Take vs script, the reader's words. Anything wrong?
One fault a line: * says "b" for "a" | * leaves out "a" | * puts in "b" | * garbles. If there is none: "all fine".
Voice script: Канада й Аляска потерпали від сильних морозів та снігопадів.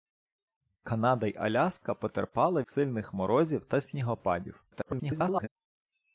* leaves out "від"
* garbles